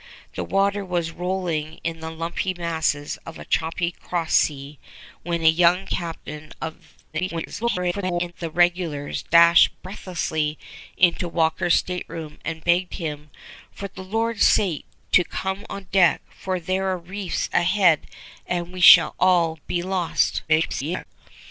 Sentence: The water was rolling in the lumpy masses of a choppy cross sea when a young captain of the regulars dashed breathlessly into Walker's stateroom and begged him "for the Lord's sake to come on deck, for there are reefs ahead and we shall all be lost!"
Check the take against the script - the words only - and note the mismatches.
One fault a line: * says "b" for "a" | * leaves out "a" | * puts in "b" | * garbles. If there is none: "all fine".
* garbles
* garbles